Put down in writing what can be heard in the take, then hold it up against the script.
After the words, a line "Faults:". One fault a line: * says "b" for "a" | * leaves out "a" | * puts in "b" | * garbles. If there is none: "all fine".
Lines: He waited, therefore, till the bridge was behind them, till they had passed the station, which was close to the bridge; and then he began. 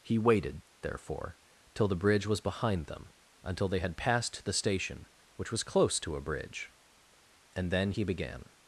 He waited, therefore, till the bridge was behind them, until they had passed the station, which was close to a bridge; and then he began.
Faults:
* says "until" for "till"
* says "a" for "the"